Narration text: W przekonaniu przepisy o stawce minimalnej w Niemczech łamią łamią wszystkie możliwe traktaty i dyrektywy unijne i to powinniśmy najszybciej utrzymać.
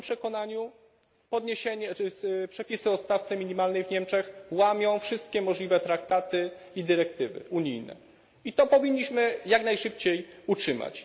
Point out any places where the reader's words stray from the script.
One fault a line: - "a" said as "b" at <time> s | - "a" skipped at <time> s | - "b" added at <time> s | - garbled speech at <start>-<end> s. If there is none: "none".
- "moim" added at 0.0 s
- "łamią" skipped at 5.0 s
- "jak" added at 9.5 s